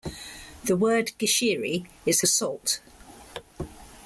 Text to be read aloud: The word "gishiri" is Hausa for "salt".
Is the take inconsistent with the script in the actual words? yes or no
yes